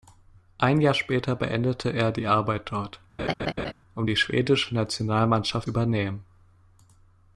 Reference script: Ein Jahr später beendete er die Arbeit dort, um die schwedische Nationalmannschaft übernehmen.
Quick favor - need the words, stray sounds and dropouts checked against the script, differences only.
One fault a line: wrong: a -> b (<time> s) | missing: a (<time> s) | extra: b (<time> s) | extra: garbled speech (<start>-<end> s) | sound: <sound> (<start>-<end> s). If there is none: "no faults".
sound: laugh (3.2-3.7 s)